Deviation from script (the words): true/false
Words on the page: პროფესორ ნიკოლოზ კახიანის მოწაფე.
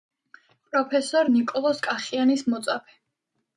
false